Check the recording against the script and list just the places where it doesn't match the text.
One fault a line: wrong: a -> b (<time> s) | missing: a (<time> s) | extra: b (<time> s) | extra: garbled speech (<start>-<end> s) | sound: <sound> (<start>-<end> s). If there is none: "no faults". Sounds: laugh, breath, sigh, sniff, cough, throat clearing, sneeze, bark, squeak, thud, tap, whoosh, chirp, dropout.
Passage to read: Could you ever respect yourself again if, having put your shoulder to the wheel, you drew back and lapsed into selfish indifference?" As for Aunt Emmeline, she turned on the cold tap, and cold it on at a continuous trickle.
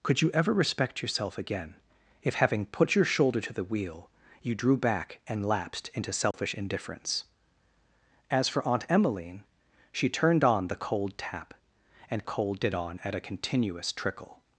sound: dropout (6.3-6.3 s)